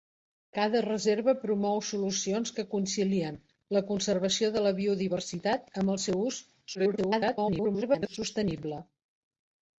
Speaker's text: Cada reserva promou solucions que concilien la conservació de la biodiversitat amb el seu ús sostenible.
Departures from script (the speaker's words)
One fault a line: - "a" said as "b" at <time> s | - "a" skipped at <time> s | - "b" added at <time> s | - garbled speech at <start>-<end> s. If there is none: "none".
- garbled speech at 6.7-8.2 s